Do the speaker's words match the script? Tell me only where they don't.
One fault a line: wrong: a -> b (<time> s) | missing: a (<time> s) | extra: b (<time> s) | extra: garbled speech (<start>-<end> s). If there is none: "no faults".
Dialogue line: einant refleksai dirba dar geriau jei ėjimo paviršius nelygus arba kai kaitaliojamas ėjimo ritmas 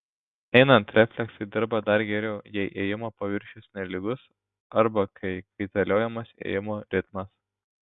no faults